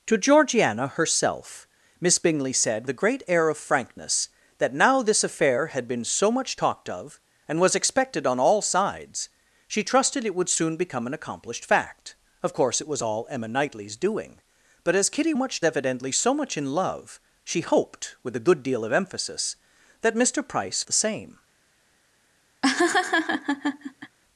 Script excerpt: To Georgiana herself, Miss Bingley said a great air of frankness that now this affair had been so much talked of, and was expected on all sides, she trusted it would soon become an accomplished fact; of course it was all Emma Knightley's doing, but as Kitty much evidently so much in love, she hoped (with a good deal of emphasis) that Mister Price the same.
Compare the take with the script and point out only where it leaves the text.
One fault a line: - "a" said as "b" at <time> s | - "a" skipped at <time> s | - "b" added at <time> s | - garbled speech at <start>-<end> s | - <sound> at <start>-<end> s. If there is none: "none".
- laugh at 22.6-24.2 s